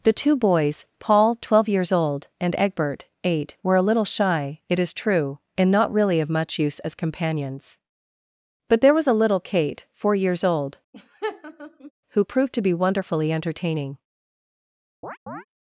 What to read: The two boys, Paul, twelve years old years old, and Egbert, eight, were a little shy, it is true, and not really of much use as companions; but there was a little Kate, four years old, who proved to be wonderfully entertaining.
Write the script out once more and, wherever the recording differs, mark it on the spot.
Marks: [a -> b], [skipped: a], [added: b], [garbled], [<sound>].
The two boys, Paul, twelve years old [skipped: years old,] and Egbert, eight, were a little shy, it is true, and not really of much use as companions; but there was a little Kate, four years old, [laugh] who proved to be wonderfully entertaining. [chirp]